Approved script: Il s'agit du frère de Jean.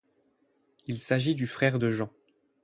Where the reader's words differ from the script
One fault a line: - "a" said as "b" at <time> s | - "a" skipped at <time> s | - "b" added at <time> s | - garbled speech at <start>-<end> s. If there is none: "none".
none